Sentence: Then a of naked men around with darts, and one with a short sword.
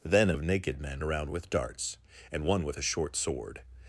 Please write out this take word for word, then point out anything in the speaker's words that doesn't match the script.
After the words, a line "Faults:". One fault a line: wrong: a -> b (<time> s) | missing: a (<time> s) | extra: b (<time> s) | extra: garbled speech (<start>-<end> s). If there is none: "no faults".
Then a of naked men around with darts, and one with a short sword.
Faults:
no faults